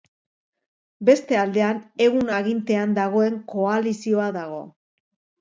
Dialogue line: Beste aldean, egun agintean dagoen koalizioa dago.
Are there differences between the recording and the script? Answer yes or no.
no